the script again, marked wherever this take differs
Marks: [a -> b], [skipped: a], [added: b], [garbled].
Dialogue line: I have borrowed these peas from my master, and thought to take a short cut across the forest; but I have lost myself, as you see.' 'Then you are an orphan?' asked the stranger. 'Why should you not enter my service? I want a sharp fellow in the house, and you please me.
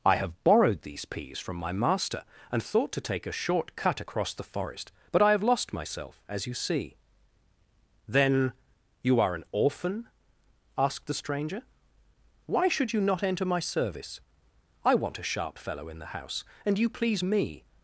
I have borrowed these peas from my master, and thought to take a short cut across the forest; but I have lost myself, as you see.' 'Then you are an orphan?' asked the stranger. 'Why should you not enter my service? I want a sharp fellow in the house, and you please me.